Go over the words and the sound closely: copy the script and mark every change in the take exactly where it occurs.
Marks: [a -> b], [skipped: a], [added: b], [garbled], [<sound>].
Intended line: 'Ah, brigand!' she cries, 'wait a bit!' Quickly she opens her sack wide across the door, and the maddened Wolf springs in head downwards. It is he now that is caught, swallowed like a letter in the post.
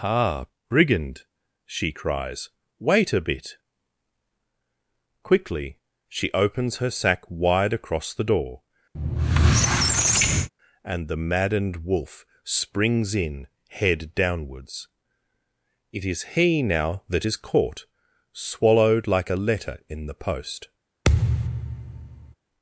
'Ah, brigand!' she cries, 'wait a bit!' Quickly she opens her sack wide across the door, [squeak] and the maddened Wolf springs in head downwards. It is he now that is caught, swallowed like a letter in the post. [thud]